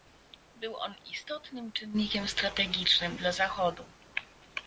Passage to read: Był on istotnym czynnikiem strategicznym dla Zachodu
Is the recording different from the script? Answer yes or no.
no